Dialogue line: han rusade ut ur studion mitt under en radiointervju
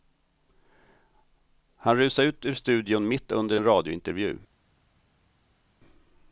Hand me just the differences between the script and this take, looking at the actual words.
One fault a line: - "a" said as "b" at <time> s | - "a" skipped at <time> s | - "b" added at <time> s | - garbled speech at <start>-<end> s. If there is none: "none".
none